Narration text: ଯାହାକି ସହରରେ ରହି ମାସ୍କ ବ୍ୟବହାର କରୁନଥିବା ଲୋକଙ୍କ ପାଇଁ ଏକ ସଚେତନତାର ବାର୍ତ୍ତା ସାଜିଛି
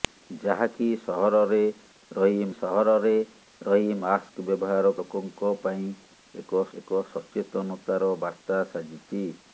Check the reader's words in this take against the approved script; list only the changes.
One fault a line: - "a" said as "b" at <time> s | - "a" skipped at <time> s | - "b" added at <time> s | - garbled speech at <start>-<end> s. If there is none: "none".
- "ସହରରେ ରହି" added at 2.6 s
- "କରୁନଥିବା" skipped at 4.9 s
- "ଏକ" added at 6.7 s